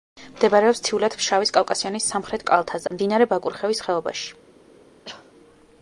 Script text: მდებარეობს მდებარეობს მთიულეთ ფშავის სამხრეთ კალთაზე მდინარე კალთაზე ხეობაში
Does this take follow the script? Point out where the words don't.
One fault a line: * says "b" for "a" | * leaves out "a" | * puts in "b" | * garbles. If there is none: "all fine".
* leaves out "მდებარეობს"
* puts in "კავკასიონის"
* says "ბაკურხევის" for "კალთაზე"